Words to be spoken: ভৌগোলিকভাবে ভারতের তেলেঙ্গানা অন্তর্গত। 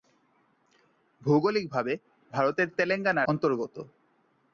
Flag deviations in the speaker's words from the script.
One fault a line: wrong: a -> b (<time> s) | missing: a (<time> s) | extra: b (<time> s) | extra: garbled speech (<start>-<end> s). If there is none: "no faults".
no faults